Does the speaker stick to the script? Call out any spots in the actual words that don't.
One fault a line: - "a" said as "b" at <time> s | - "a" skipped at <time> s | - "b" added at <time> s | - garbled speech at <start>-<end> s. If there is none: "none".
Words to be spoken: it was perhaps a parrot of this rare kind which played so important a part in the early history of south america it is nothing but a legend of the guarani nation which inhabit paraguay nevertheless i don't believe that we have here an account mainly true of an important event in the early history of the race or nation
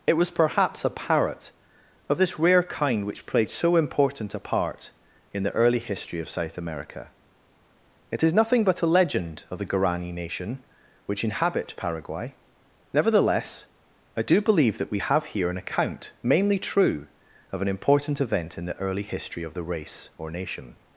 - "don't" said as "do" at 14.2 s